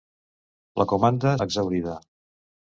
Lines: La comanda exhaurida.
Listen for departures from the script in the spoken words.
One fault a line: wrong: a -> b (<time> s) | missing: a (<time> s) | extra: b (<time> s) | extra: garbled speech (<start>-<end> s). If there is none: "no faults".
no faults